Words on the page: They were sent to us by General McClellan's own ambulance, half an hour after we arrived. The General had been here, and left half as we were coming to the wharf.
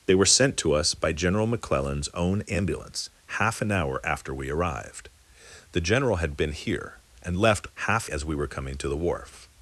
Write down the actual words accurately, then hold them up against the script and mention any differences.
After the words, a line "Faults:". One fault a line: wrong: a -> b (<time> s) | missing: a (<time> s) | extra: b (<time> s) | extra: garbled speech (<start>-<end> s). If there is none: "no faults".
They were sent to us by General McClellan's own ambulance, half an hour after we arrived. The General had been here, and left half as we were coming to the wharf.
Faults:
no faults